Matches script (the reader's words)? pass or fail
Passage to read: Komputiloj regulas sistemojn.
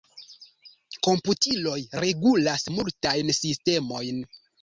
fail